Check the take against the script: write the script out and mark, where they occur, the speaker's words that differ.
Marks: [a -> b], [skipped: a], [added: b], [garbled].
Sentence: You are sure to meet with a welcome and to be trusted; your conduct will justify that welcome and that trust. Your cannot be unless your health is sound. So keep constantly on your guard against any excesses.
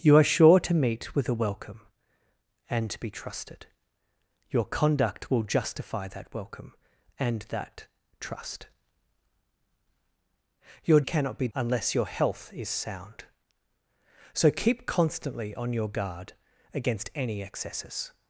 You are sure to meet with a welcome and to be trusted; your conduct will justify that welcome and that trust. Your cannot be unless your health is sound. So keep constantly on your guard against any excesses.